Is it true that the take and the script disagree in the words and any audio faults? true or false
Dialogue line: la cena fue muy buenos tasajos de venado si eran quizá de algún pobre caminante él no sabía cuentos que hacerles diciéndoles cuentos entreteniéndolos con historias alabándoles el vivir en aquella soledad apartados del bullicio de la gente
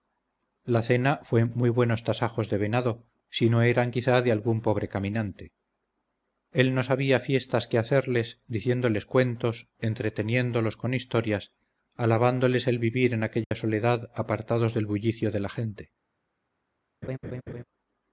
true